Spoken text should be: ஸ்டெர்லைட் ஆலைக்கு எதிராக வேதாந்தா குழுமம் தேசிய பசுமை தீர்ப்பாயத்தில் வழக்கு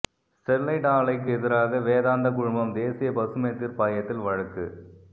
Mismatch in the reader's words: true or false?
false